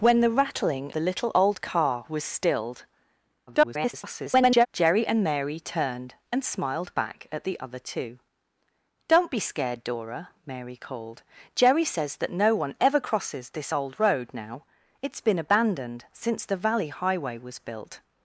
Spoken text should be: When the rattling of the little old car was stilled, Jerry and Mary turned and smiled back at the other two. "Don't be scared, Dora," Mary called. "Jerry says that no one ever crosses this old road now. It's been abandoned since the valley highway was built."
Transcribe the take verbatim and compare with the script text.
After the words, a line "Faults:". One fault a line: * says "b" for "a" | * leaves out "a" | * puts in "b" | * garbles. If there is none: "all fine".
When the rattling the little old car was stilled, [garbled] Jerry and Mary turned and smiled back at the other two. "Don't be scared, Dora," Mary called. "Jerry says that no one ever crosses this old road now. It's been abandoned since the valley highway was built."
Faults:
* leaves out "of"
* garbles